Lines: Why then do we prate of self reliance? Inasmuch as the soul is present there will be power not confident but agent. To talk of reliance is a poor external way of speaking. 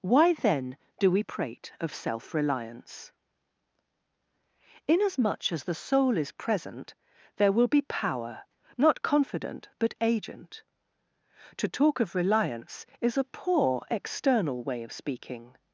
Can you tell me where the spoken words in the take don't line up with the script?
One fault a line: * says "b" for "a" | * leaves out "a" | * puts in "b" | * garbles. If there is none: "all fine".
all fine